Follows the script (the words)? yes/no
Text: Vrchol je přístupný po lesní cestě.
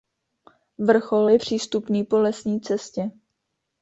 yes